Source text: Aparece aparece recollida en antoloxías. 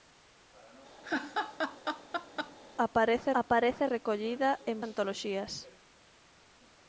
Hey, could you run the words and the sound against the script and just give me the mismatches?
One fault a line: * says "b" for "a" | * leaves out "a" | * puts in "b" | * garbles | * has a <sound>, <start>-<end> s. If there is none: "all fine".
* has a laugh, 1.0-2.6 s